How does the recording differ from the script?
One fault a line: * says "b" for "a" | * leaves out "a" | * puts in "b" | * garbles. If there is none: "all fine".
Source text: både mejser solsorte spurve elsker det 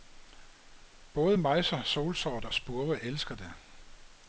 all fine